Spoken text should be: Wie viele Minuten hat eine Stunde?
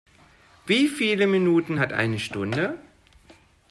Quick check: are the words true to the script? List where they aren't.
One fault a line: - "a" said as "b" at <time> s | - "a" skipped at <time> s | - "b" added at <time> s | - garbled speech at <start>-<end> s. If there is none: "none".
none